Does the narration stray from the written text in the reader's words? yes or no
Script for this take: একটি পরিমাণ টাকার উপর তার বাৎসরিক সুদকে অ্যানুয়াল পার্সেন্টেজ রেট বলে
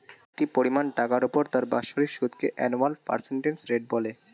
no